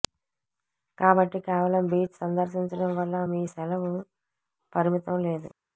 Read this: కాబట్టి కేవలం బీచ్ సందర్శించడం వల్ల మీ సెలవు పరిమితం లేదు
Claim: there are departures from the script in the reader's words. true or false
false